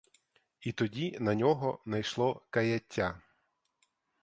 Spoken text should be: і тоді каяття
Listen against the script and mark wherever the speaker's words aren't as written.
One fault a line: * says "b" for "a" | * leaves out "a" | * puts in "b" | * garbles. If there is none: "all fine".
* puts in "на нього найшло"